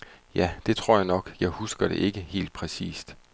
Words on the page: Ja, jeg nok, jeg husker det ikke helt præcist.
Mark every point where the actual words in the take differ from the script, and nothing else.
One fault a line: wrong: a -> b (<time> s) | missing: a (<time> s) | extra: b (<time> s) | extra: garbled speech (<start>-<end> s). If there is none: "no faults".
extra: det tror (0.7 s)